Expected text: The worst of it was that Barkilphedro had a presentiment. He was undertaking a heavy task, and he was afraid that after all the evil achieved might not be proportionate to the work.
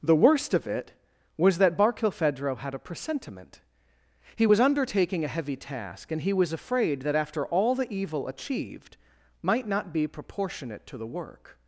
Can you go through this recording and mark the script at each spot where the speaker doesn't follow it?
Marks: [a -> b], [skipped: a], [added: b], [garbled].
The worst of it was that Barkilphedro had a presentiment. He was undertaking a heavy task, and he was afraid that after all the evil achieved might not be proportionate to the work.